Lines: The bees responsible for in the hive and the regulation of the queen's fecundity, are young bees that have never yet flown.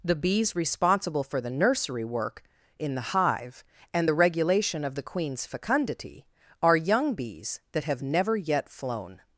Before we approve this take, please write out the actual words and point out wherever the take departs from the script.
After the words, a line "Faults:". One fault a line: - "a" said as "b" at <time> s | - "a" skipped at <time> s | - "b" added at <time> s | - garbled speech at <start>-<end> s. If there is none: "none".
The bees responsible for the nursery work in the hive and the regulation of the queen's fecundity, are young bees that have never yet flown.
Faults:
- "the nursery work" added at 1.4 s